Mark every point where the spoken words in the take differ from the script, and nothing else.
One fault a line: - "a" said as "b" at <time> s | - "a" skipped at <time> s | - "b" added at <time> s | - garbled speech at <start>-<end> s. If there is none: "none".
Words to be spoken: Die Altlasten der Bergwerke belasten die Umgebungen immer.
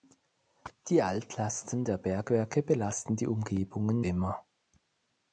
none